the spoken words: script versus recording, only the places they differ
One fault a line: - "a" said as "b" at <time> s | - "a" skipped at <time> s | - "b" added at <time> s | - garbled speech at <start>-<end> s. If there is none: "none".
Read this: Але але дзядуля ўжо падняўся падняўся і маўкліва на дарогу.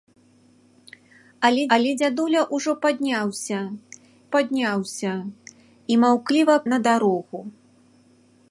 none